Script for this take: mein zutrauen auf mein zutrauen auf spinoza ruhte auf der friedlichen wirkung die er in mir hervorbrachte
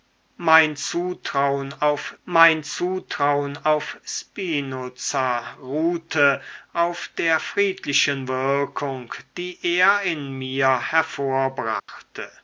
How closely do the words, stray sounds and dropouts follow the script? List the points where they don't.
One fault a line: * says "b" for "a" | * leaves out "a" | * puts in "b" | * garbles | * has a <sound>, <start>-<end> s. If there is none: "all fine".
* has a dropout, 11.8-11.9 s